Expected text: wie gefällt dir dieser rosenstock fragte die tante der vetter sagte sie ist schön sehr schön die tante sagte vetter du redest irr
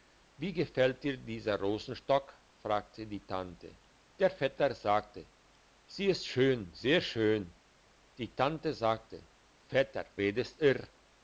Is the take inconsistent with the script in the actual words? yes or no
yes